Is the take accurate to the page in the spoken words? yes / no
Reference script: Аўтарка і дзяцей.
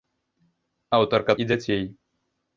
yes